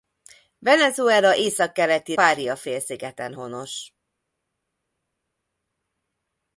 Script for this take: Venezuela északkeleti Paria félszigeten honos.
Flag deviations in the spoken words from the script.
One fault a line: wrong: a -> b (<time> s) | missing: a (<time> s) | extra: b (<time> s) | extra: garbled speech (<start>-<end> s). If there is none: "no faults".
no faults